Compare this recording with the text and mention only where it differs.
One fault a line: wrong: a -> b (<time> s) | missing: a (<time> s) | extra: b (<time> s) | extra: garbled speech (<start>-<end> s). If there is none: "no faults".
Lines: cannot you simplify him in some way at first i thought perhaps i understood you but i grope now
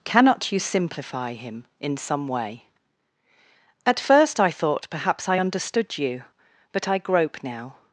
no faults